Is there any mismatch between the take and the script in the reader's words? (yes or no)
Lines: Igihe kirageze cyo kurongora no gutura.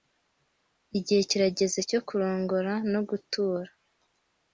no